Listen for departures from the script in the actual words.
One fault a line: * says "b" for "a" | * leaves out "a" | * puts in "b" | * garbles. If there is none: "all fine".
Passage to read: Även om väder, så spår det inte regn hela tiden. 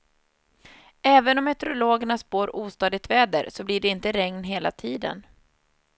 * puts in "meteorologerna spår ostadigt"
* says "blir" for "spår"